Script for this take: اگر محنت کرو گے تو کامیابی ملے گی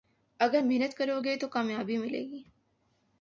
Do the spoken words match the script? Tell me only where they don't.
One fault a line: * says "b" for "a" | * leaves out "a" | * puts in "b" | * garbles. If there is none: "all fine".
all fine